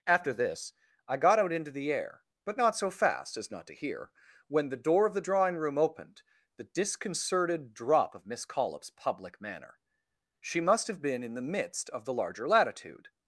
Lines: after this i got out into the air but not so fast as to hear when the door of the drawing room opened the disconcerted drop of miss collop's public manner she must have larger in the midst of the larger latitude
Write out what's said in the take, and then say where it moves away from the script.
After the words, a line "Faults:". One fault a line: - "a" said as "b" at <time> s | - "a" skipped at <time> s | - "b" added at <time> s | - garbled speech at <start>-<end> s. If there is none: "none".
after this i got out into the air but not so fast as not to hear when the door of the drawing room opened the disconcerted drop of miss collop's public manner she must have been in the midst of the larger latitude
Faults:
- "not" added at 3.5 s
- "larger" said as "been" at 11.0 s